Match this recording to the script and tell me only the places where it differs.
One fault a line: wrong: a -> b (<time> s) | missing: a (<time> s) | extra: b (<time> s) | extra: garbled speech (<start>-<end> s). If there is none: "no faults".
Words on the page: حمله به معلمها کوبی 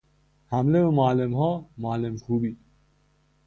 extra: معلم (1.8 s)